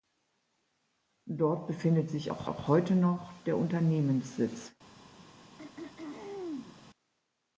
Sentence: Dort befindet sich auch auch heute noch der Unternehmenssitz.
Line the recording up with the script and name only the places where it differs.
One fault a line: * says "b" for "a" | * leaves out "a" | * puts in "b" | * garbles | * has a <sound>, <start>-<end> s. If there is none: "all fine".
* has a throat clearing, 5.6-6.8 s